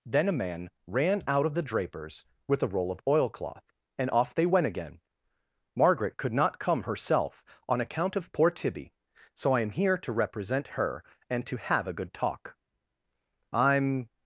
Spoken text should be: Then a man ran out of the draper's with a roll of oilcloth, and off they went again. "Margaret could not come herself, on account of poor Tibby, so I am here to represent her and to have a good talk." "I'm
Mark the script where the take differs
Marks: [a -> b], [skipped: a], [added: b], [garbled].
Then a man ran out of the draper's with a roll of oilcloth, and off they went again. "Margaret could not come herself, on account of poor Tibby, so I am here to represent her and to have a good talk." "I'm